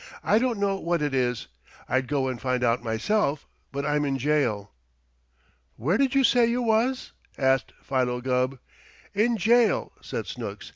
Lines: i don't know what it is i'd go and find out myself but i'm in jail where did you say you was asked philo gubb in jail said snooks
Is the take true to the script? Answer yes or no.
yes